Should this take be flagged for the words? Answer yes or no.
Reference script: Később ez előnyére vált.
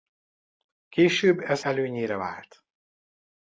no